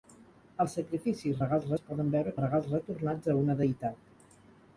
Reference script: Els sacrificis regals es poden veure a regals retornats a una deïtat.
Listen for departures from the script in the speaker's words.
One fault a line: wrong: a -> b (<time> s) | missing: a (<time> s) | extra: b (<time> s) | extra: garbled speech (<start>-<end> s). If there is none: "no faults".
no faults